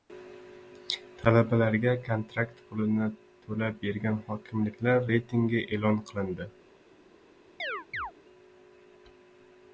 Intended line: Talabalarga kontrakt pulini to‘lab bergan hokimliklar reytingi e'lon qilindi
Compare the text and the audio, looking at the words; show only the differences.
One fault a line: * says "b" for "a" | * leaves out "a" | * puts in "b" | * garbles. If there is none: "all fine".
all fine